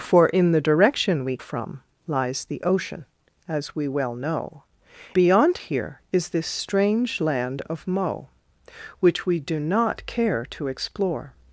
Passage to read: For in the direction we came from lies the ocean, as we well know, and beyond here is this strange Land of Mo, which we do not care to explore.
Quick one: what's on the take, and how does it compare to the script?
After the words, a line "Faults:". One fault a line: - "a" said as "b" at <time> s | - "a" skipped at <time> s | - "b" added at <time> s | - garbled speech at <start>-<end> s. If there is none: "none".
For in the direction we from lies the ocean, as we well know, beyond here is this strange Land of Mo, which we do not care to explore.
Faults:
- "came" skipped at 1.4 s
- "and" skipped at 4.6 s